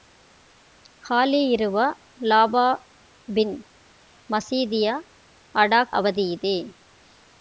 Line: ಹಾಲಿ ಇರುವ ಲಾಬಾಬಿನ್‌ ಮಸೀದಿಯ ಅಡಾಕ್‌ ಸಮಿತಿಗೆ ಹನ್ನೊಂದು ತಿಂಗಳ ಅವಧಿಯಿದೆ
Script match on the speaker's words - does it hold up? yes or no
no